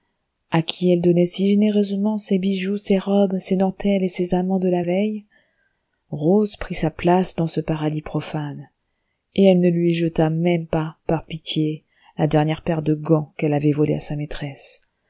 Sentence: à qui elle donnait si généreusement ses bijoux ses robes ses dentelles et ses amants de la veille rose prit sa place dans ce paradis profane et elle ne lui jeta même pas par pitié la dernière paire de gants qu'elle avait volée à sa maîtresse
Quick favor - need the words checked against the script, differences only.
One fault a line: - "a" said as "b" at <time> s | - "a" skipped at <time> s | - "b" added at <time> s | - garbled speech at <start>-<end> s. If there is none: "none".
none